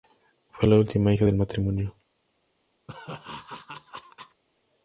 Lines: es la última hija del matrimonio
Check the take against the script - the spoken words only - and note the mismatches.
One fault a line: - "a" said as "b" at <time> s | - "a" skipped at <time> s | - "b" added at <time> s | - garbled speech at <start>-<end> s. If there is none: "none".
- "es" said as "fue" at 0.5 s